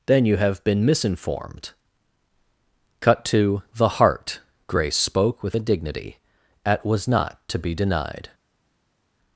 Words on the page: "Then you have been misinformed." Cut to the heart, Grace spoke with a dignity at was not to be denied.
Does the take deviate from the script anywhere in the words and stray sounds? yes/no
no